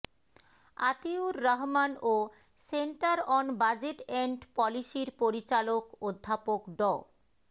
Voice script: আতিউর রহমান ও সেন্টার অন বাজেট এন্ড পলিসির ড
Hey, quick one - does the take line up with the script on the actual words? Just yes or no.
no